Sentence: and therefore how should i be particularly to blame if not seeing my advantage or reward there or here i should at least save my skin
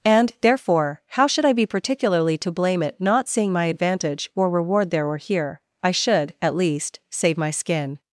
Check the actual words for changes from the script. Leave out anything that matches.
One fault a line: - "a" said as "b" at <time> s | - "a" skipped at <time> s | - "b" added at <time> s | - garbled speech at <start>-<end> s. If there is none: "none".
- "if" said as "it" at 2.8 s